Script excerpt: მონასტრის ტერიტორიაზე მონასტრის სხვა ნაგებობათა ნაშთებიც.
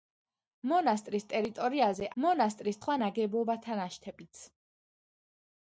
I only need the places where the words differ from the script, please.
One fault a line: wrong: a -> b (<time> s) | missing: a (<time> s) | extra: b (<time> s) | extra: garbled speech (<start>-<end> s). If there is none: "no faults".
no faults